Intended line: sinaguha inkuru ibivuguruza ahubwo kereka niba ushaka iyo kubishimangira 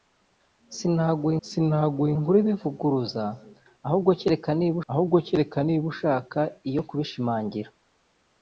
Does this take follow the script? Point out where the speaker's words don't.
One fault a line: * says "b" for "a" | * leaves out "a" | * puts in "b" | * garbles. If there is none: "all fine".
* puts in "sinaguha"
* puts in "ahubwo kereka niba"